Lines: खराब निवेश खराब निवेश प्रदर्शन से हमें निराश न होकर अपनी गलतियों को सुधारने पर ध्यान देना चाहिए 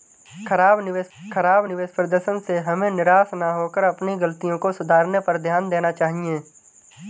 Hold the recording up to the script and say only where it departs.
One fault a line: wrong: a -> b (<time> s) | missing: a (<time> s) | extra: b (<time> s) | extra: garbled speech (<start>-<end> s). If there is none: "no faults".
no faults